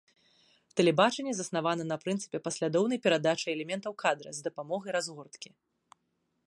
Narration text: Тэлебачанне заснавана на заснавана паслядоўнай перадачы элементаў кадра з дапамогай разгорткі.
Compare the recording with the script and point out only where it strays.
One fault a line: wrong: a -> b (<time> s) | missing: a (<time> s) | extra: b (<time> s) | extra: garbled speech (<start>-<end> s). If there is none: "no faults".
wrong: заснавана -> прынцыпе (2.0 s)